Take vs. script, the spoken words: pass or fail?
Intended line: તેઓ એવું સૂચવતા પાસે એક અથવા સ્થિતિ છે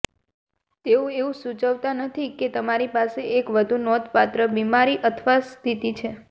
fail